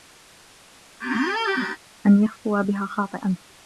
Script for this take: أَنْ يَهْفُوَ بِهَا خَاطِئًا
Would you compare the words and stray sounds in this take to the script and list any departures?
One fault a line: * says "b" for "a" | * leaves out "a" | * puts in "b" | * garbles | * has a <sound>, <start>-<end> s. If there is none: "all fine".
* has a squeak, 1.0-1.8 s